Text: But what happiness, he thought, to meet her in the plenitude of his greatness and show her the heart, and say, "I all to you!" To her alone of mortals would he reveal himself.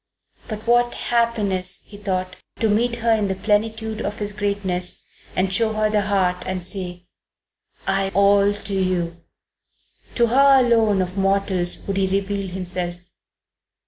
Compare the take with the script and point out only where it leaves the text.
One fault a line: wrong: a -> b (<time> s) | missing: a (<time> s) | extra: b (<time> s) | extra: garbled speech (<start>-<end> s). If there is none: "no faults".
no faults